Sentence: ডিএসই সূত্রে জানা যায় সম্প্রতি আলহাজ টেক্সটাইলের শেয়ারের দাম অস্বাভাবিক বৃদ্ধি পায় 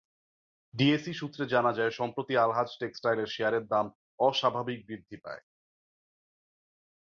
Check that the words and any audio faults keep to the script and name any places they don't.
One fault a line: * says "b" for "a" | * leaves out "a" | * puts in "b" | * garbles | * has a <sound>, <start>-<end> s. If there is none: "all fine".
all fine